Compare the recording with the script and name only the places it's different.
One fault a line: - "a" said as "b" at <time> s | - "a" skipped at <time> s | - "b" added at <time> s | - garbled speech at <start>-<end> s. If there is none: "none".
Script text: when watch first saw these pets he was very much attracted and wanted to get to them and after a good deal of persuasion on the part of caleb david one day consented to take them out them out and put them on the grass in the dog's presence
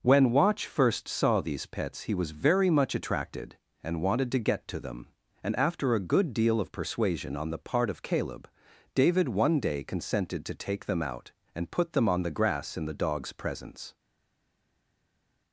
- "them out" skipped at 11.3 s